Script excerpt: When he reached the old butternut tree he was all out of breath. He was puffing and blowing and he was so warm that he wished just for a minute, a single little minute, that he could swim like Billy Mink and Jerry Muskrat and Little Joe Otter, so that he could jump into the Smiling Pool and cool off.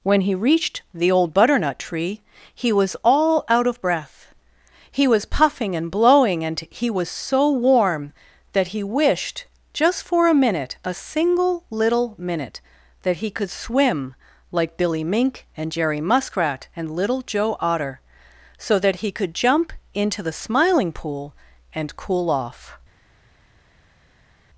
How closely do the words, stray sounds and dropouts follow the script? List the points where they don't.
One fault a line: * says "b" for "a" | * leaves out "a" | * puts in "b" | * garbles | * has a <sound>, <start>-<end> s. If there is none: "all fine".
all fine